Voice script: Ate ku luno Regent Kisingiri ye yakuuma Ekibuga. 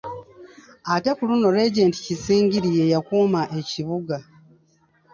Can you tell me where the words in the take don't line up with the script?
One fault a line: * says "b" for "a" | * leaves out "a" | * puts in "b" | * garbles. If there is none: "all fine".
all fine